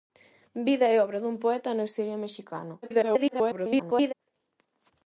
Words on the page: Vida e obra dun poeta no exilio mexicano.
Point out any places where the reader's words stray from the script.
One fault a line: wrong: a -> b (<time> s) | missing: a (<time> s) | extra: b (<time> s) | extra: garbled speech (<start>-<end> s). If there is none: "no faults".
extra: garbled speech (2.8-4.1 s)